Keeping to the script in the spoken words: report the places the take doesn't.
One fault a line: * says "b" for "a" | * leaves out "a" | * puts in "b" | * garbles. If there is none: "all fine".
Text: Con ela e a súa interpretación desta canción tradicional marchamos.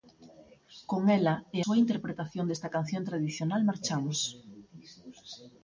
* leaves out "a"